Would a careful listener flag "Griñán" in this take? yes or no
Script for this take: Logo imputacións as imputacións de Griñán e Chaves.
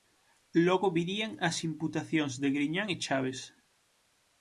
no